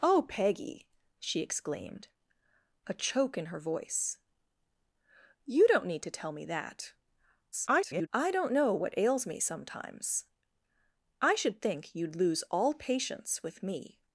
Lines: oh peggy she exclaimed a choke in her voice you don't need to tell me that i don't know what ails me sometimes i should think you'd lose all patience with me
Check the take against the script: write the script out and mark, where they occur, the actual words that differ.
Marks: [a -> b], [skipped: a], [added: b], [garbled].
oh peggy she exclaimed a choke in her voice you don't need to tell me that [garbled] i don't know what ails me sometimes i should think you'd lose all patience with me